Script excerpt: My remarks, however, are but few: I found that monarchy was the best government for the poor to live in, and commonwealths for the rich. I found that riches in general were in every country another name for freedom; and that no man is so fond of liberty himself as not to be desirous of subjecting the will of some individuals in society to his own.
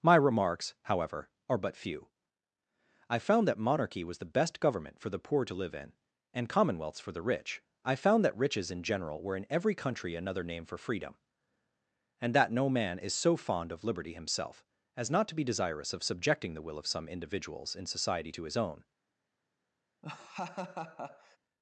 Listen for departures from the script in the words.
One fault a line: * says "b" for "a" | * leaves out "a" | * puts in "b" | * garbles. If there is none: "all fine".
all fine